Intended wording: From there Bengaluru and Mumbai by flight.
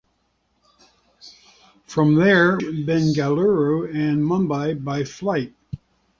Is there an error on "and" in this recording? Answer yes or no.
no